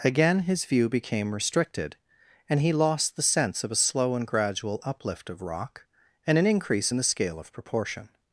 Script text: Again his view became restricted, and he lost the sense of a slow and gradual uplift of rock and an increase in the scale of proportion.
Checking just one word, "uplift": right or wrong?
right